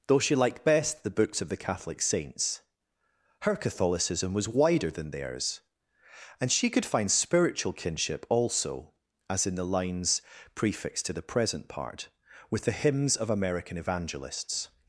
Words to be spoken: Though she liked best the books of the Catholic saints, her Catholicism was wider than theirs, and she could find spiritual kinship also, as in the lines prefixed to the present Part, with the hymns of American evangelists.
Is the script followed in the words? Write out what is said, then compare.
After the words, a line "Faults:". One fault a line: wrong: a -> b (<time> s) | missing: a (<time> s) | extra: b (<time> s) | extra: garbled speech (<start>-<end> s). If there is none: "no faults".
Though she liked best the books of the Catholic saints, her Catholicism was wider than theirs, and she could find spiritual kinship also, as in the lines prefixed to the present Part, with the hymns of American evangelists.
Faults:
no faults